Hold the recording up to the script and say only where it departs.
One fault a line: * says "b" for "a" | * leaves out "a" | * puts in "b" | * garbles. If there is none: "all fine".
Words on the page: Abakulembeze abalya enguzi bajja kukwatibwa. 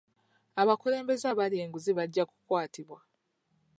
all fine